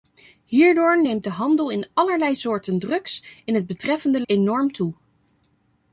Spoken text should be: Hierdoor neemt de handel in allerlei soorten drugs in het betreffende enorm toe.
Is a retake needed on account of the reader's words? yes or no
no